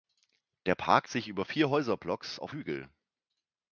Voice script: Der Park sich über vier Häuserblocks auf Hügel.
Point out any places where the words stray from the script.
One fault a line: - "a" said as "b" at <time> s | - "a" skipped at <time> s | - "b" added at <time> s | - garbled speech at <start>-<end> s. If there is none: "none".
none